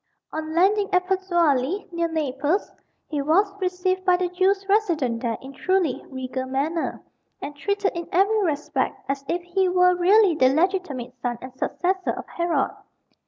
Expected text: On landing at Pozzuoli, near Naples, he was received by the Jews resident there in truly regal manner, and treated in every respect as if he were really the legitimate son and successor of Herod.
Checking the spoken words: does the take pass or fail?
pass